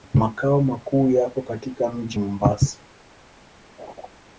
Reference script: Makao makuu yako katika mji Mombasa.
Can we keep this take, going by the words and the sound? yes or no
no